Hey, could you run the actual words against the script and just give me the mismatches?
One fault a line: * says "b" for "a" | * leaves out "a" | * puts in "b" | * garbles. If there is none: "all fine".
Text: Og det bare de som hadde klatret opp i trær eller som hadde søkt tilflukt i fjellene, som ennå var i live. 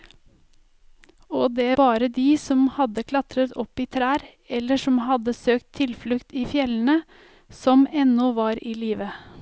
all fine